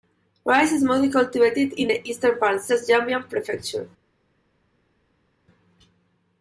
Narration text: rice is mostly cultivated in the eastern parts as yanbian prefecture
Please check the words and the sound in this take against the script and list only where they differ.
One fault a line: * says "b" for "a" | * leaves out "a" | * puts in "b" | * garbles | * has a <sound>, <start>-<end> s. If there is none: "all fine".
all fine